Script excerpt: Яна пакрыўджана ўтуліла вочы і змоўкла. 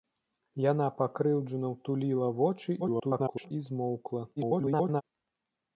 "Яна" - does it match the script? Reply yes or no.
yes